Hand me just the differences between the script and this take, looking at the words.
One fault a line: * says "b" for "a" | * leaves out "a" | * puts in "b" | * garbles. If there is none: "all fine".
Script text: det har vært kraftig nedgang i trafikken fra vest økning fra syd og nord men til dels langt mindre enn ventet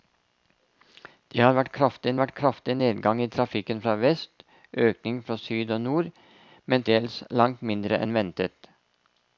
* puts in "vært kraftig"
* leaves out "til"